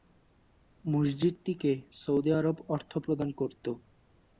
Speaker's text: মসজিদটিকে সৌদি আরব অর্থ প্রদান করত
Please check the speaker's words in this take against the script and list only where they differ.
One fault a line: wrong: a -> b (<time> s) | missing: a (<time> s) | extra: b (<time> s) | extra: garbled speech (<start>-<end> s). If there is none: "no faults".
no faults